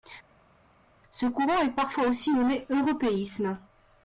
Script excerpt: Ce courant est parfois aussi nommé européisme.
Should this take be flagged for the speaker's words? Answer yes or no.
no